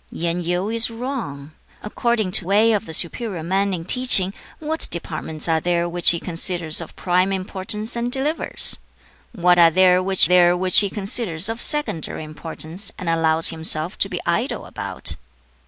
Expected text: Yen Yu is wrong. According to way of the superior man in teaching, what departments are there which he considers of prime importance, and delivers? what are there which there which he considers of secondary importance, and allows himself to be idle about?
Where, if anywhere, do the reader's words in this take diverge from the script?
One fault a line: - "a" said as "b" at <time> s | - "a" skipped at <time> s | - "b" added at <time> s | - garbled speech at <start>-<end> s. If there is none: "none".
none